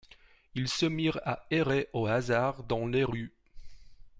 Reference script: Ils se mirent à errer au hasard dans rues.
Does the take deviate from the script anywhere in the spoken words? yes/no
yes